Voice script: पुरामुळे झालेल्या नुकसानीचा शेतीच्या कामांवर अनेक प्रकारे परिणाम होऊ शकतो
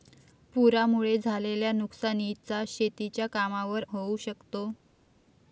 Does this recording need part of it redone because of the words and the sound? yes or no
yes